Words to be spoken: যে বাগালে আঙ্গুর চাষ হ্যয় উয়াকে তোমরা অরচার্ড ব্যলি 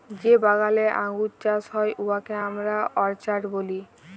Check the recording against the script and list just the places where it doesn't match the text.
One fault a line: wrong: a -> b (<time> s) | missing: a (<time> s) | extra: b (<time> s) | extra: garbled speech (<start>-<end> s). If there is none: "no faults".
wrong: তোমরা -> আমরা (2.5 s)